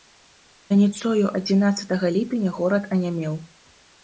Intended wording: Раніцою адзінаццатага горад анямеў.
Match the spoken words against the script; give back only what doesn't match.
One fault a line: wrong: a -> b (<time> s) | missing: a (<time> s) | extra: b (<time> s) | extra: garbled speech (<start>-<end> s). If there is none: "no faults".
extra: ліпеня (2.1 s)